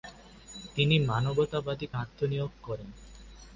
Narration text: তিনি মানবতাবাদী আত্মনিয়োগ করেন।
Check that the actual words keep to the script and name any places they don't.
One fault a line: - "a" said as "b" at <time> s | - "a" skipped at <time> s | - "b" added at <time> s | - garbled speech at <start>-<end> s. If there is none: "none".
none